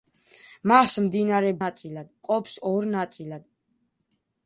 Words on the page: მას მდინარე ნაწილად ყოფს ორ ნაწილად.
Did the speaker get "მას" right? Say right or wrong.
right